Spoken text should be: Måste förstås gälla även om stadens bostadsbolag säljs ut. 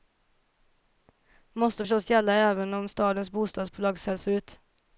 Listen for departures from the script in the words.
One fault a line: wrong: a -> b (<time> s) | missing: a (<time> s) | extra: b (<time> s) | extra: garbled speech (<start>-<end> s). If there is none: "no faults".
no faults